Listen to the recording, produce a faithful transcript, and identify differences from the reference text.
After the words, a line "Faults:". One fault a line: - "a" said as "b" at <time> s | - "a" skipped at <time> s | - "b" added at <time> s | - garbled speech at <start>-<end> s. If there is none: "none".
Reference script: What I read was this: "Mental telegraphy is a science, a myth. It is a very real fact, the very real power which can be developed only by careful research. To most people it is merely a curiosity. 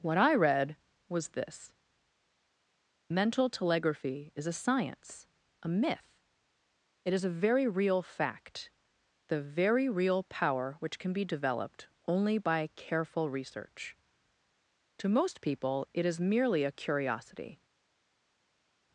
What I read was this: "Mental telegraphy is a science, a myth. It is a very real fact, the very real power which can be developed only by careful research. To most people it is merely a curiosity.
Faults:
none